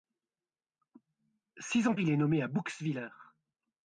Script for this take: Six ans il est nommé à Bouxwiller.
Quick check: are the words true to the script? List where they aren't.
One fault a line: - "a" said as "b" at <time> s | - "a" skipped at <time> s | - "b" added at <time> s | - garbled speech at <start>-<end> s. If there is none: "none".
none